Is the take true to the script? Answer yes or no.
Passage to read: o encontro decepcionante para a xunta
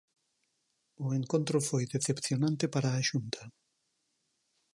no